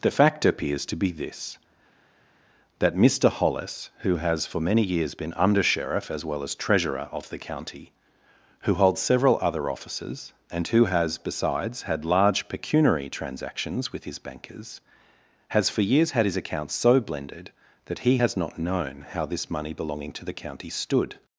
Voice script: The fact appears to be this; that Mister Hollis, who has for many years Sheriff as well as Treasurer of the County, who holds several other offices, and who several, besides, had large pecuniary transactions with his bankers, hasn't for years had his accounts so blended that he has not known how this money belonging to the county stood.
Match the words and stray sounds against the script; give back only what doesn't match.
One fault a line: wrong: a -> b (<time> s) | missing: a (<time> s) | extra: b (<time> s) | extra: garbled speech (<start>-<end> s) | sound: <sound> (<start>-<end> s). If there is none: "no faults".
extra: been Under (5.2 s)
wrong: several -> has (10.8 s)
wrong: hasn't -> has (15.5 s)